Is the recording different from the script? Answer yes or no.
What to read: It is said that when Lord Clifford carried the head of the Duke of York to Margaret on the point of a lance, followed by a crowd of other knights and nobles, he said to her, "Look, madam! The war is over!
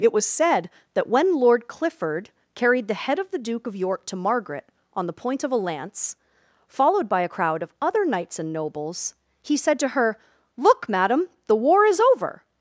yes